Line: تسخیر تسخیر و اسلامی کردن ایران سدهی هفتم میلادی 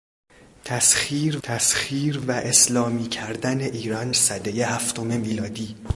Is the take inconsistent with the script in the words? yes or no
no